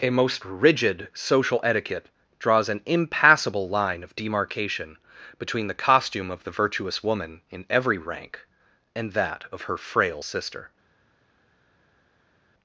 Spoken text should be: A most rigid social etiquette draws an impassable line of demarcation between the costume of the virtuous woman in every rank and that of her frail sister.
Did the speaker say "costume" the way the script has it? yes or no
yes